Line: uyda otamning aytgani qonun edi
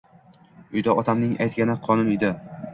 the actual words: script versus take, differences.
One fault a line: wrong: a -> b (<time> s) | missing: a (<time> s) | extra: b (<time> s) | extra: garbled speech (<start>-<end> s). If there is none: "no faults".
no faults